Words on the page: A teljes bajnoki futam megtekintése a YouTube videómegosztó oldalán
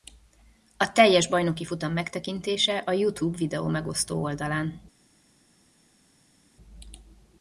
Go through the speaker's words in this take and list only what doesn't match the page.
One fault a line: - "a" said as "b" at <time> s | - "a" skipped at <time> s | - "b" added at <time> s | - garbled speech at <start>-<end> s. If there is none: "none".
none